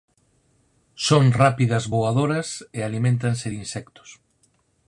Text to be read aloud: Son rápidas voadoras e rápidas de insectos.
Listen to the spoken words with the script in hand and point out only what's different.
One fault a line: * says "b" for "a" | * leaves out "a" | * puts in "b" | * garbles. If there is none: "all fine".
* says "aliméntanse" for "rápidas"